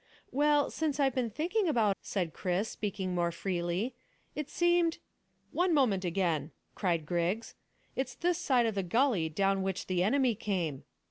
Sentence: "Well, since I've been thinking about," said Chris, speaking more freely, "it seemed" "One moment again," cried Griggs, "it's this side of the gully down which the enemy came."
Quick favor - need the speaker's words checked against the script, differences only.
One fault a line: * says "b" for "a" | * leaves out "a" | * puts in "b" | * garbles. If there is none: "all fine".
all fine